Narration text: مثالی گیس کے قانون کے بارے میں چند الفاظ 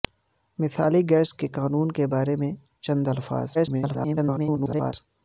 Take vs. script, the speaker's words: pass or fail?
fail